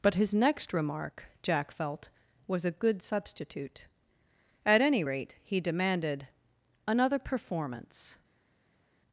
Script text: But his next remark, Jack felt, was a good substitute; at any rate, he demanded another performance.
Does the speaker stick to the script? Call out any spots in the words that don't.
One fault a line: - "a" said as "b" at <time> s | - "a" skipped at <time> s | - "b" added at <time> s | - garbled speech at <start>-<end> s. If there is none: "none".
none